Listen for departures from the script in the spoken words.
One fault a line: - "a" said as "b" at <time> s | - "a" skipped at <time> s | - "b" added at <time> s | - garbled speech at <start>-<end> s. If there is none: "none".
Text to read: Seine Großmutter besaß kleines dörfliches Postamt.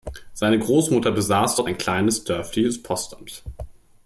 - "dort ein" added at 1.5 s